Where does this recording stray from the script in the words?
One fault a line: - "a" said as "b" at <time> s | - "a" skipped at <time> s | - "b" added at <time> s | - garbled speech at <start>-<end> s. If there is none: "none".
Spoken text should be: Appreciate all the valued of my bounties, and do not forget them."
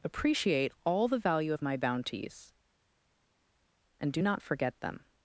- "valued" said as "value" at 1.2 s